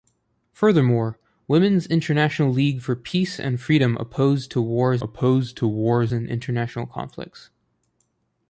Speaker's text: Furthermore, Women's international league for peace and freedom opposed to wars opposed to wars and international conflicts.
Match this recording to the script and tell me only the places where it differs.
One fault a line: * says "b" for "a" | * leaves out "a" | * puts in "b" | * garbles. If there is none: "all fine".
all fine